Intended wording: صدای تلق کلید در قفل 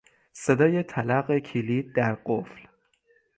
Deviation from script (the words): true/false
false